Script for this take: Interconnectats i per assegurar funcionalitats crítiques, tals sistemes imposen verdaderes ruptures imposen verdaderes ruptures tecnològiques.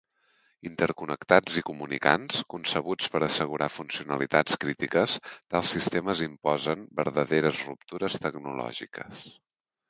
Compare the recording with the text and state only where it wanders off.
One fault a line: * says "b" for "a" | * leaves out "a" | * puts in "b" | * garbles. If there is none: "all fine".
* puts in "comunicants concebuts"
* leaves out "imposen verdaderes ruptures"